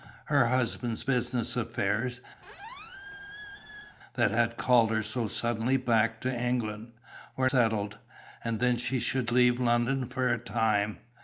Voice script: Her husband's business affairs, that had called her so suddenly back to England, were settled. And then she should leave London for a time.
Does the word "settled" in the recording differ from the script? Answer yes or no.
no